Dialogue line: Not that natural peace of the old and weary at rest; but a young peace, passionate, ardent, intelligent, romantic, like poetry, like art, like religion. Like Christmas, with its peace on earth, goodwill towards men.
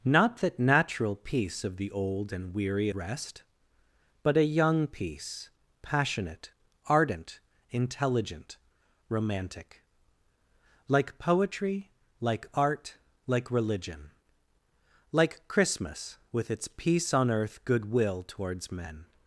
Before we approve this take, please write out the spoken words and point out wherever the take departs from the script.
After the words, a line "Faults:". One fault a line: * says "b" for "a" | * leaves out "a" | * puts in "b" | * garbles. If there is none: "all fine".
Not that natural peace of the old and weary rest; but a young peace, passionate, ardent, intelligent, romantic, like poetry, like art, like religion. Like Christmas, with its peace on earth, goodwill towards men.
Faults:
* leaves out "at"